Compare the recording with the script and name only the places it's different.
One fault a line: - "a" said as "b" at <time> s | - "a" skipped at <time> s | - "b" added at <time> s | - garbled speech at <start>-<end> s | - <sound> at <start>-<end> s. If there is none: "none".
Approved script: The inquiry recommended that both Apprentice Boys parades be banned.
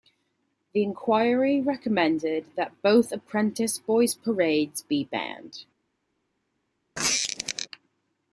- squeak at 7.0-7.7 s